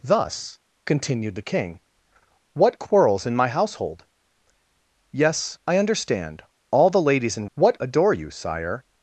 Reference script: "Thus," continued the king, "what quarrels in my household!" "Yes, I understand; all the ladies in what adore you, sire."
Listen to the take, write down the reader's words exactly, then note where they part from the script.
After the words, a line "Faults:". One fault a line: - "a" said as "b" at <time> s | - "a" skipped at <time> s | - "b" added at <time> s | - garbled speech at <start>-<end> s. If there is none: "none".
"Thus," continued the king, "what quarrels in my household!" "Yes, I understand; all the ladies in what adore you, sire."
Faults:
none